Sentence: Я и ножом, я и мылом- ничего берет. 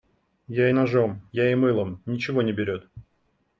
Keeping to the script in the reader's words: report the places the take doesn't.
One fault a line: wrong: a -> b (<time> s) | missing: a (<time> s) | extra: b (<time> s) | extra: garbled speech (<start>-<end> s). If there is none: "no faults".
extra: не (2.4 s)